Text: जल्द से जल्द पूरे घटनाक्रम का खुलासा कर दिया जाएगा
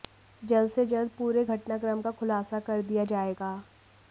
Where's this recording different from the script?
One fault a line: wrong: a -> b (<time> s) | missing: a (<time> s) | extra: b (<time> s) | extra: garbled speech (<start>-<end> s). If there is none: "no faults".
no faults